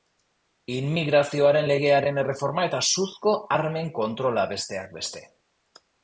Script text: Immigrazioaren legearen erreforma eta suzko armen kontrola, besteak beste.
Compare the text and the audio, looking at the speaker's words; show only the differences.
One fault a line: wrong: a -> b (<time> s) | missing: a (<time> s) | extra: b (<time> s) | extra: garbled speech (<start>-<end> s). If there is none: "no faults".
no faults